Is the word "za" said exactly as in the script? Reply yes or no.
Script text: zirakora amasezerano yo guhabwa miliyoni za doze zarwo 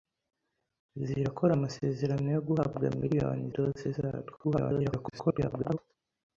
no